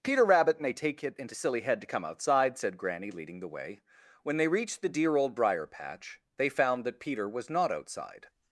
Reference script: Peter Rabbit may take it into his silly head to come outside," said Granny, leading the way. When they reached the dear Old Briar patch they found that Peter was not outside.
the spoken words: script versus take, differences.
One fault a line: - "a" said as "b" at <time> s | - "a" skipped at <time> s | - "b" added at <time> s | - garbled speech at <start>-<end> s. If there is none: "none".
- "his" skipped at 1.4 s